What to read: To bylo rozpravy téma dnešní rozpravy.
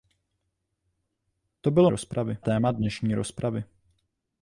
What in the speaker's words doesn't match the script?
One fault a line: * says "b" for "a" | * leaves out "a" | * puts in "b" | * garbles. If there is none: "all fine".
all fine